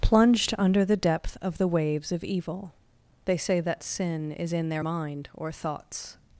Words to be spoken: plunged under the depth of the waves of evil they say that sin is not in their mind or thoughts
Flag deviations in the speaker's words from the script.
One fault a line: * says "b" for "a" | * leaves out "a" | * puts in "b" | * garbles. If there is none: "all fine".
* leaves out "not"